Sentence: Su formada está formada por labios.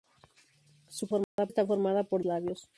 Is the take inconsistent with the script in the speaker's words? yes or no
no